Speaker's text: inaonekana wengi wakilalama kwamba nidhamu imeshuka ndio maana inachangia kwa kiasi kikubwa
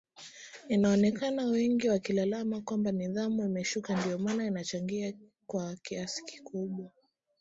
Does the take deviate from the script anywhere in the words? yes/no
no